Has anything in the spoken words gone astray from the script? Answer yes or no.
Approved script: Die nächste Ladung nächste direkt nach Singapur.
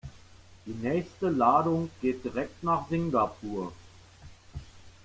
yes